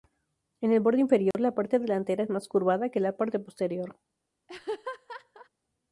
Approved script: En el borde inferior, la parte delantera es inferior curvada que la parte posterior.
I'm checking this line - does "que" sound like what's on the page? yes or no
yes